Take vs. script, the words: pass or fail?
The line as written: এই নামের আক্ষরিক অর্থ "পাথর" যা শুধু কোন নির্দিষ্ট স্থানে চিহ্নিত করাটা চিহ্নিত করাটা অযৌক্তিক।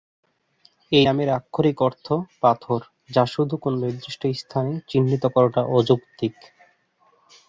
fail